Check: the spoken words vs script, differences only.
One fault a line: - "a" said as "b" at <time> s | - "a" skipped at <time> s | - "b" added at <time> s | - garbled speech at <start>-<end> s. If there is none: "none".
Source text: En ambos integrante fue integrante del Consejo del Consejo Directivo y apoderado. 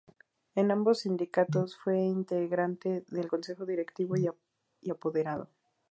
- "integrante" said as "sindicatos" at 1.0 s
- "del Consejo" skipped at 3.6 s